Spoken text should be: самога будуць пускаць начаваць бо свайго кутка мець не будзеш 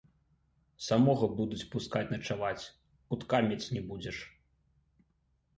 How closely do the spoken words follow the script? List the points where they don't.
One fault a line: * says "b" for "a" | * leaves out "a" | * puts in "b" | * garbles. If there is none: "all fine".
* leaves out "бо свайго"